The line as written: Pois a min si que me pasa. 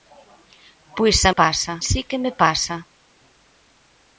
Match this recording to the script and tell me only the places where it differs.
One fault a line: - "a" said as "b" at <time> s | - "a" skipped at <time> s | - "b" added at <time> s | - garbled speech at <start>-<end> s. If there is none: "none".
- "min" said as "pasa" at 1.4 s